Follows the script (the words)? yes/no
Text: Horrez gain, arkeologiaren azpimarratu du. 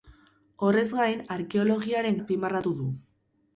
yes